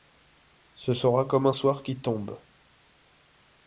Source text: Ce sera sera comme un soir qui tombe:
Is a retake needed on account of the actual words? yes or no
yes